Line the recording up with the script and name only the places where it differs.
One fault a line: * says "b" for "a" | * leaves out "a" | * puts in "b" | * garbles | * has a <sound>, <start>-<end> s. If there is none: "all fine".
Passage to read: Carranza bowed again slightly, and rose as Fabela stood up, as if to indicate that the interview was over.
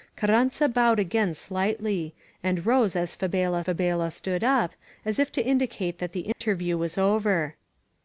* puts in "Fabela"
* has a dropout, 6.3-6.4 s